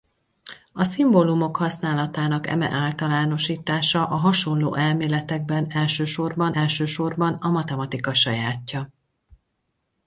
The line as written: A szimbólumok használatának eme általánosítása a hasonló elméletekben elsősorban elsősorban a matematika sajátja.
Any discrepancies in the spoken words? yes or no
no